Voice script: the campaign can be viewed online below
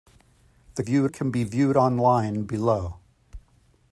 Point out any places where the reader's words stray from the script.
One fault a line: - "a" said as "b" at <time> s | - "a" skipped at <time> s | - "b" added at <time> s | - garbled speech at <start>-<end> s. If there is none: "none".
- "campaign" said as "viewed" at 0.8 s